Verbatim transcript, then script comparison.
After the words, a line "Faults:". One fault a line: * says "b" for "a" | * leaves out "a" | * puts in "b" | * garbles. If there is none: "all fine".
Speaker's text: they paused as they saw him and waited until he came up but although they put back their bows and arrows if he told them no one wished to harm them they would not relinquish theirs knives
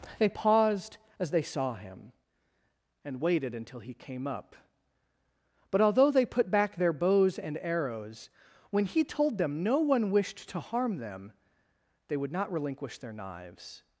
they paused as they saw him and waited until he came up but although they put back their bows and arrows when he told them no one wished to harm them they would not relinquish their knives
Faults:
* says "when" for "if"
* says "their" for "theirs"